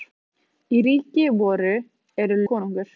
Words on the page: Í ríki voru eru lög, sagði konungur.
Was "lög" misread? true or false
true